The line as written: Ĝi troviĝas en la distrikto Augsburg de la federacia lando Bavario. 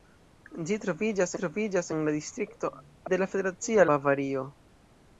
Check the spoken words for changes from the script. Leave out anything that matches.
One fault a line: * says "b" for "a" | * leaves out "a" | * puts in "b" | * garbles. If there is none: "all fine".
* puts in "troviĝas"
* leaves out "Augsburg"
* leaves out "lando"